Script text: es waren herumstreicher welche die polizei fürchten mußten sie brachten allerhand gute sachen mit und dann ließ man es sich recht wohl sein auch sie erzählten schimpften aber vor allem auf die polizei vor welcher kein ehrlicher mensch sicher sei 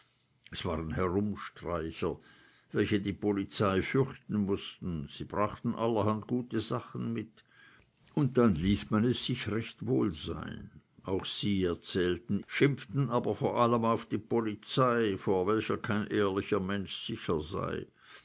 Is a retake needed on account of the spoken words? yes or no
no